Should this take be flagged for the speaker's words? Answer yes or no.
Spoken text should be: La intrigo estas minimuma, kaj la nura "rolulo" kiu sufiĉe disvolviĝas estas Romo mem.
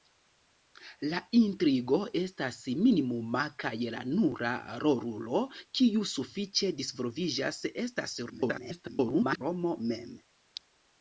yes